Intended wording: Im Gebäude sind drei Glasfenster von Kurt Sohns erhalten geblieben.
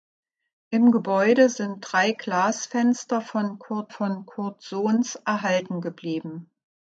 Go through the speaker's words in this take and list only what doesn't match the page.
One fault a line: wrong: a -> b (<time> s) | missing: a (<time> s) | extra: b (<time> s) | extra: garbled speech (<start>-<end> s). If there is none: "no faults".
extra: von Kurt (3.9 s)